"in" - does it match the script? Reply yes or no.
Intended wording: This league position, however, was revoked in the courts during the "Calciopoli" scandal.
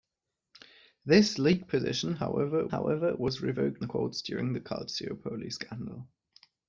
no